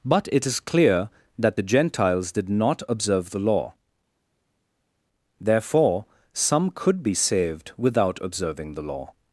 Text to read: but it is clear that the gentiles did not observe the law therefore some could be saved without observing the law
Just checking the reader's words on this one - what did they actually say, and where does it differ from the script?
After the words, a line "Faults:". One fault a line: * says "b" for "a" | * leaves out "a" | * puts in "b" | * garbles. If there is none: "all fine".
but it is clear that the gentiles did not observe the law therefore some could be saved without observing the law
Faults:
all fine